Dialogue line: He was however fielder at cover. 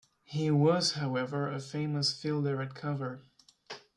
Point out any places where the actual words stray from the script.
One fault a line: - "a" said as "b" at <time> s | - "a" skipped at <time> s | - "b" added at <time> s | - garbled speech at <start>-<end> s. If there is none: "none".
- "a famous" added at 1.5 s